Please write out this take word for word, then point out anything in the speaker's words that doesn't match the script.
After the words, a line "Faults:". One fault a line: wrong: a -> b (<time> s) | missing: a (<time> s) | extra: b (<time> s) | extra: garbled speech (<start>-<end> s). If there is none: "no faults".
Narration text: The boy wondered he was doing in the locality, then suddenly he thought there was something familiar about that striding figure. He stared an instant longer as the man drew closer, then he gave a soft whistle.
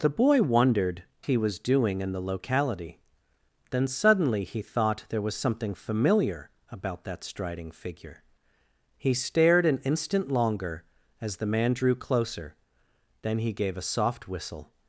The boy wondered he was doing in the locality, then suddenly he thought there was something familiar about that striding figure. He stared an instant longer as the man drew closer, then he gave a soft whistle.
Faults:
no faults